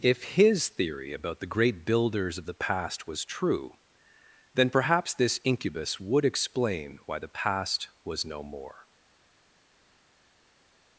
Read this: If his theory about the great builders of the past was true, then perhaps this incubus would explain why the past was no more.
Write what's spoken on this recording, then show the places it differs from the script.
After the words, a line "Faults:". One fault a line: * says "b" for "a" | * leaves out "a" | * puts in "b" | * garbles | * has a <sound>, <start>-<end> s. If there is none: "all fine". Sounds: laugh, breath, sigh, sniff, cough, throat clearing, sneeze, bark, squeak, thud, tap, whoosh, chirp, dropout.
If his theory about the great builders of the past was true, then perhaps this incubus would explain why the past was no more.
Faults:
all fine